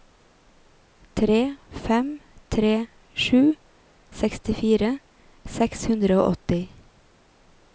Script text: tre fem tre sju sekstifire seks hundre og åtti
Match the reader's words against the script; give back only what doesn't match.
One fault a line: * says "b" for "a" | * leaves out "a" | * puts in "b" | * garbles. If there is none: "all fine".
all fine